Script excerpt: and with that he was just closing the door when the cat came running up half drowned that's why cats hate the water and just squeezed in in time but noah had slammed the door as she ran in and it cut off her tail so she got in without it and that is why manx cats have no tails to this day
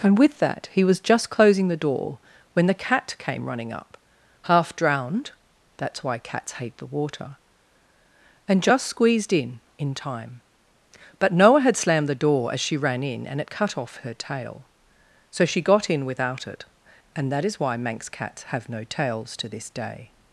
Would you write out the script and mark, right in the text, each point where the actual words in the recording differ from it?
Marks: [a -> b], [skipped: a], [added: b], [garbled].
and with that he was just closing the door when the cat came running up half drowned that's why cats hate the water and just squeezed in in time but noah had slammed the door as she ran in and it cut off her tail so she got in without it and that is why manx cats have no tails to this day